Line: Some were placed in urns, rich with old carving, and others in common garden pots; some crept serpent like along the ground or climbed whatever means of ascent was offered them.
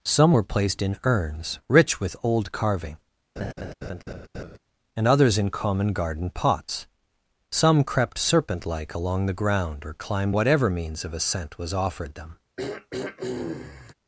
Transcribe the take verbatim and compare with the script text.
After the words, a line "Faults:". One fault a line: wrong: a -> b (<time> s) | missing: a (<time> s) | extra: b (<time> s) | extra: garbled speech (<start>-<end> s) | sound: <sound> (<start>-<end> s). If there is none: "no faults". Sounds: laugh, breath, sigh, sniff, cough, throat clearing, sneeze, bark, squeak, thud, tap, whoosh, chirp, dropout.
Some were placed in urns, rich with old carving, and others in common garden pots; some crept serpent like along the ground or climbed whatever means of ascent was offered them.
Faults:
sound: laugh (3.4-4.6 s)
sound: throat clearing (12.6-13.9 s)